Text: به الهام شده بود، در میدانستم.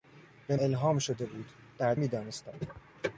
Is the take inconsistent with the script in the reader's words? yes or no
no